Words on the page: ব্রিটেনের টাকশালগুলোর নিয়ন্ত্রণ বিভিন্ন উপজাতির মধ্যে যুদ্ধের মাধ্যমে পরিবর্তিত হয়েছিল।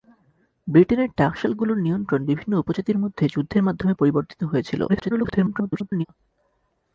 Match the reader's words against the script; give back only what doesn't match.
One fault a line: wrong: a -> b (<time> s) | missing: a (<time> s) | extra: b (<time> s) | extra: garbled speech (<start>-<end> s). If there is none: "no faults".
extra: garbled speech (4.9-6.1 s)